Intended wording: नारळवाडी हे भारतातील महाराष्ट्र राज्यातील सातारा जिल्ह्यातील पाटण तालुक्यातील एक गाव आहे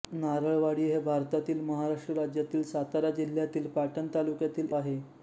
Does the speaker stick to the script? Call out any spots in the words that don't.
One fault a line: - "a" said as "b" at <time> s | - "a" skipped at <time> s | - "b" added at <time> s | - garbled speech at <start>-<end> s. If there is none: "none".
- "एक गाव" skipped at 4.8 s